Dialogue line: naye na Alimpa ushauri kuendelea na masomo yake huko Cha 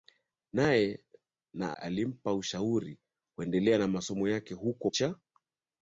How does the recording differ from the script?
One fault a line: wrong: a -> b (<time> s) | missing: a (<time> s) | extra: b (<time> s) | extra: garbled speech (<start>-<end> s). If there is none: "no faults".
no faults